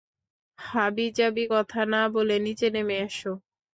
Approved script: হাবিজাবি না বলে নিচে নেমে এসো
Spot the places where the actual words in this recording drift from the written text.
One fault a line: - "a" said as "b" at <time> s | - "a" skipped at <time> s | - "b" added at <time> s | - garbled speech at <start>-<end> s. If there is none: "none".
- "কথা" added at 1.5 s